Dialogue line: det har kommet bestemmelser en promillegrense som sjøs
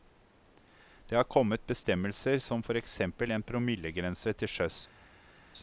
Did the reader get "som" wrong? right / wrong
wrong